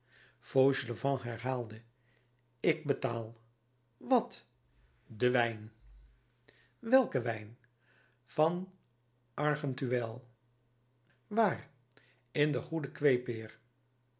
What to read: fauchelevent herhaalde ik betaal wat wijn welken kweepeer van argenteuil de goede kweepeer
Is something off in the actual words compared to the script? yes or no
yes